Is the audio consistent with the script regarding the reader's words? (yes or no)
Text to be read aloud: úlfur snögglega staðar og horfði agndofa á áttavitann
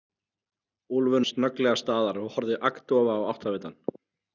yes